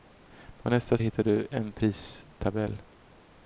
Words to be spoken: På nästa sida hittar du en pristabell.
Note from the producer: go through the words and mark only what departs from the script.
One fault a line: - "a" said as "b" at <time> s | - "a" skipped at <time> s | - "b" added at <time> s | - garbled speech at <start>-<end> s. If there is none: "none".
- "sida" skipped at 1.0 s